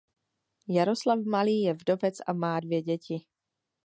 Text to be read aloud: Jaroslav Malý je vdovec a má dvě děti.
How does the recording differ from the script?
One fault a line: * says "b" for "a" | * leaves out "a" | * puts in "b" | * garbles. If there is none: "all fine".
all fine